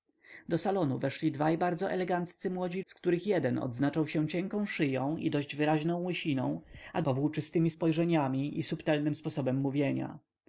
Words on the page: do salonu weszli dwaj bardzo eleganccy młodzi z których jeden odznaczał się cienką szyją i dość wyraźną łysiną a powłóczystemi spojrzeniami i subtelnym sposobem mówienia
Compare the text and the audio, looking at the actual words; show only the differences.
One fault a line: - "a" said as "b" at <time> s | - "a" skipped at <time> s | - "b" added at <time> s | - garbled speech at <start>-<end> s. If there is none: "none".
none